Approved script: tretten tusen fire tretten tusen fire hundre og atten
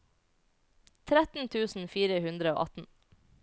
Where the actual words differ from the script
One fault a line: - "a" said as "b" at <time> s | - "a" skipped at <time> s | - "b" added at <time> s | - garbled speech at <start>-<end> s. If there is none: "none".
- "tretten tusen fire" skipped at 2.2 s